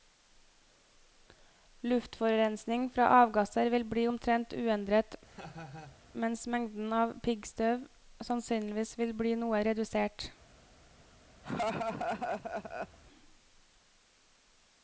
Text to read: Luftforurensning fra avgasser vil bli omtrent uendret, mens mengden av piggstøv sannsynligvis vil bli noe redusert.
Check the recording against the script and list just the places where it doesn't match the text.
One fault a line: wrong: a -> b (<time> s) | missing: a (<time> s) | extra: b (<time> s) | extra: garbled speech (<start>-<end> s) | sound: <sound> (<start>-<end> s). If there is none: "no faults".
sound: laugh (5.2-6.0 s)
sound: laugh (11.4-13.0 s)